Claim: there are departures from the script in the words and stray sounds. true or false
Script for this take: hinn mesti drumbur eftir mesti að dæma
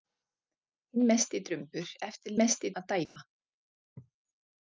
true